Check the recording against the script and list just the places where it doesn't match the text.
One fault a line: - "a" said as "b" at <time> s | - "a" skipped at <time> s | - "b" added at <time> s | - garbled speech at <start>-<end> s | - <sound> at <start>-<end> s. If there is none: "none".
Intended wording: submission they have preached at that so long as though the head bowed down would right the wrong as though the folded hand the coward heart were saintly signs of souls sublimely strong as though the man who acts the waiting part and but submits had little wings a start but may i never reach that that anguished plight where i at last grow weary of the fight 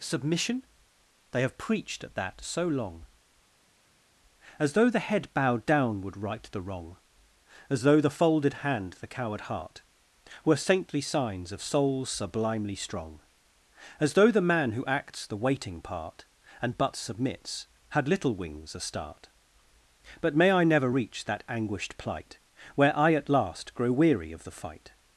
- "that" skipped at 21.4 s